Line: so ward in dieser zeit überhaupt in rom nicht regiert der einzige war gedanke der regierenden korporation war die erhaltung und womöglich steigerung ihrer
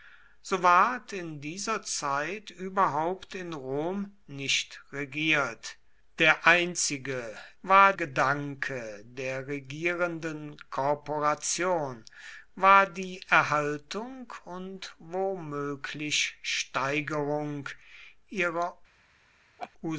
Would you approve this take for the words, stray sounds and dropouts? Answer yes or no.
no